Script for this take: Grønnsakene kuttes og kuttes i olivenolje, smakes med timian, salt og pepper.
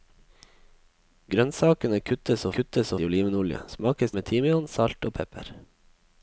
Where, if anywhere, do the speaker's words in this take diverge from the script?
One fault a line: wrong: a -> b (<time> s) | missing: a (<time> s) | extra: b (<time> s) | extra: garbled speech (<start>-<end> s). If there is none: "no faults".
no faults